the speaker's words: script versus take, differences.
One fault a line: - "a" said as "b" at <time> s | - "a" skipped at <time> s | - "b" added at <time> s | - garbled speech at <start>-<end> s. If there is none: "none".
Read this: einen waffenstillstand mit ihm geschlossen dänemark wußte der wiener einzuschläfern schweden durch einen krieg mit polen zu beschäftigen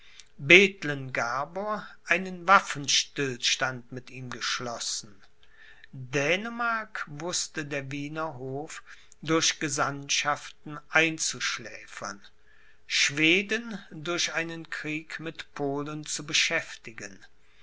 - "hof durch gesandtschaften" added at 8.4 s